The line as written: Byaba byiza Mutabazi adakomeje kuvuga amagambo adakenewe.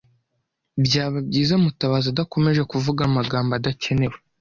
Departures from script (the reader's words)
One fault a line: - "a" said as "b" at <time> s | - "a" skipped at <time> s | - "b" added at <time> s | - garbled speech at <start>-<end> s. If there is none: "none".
none